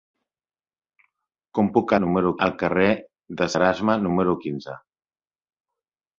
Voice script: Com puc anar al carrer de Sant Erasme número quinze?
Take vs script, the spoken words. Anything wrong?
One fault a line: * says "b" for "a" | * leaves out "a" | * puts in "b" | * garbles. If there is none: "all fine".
* says "número" for "anar"
* leaves out "Sant"